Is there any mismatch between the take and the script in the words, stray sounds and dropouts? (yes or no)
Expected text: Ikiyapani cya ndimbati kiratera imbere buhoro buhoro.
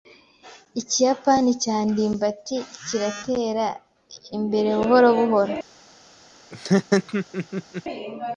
yes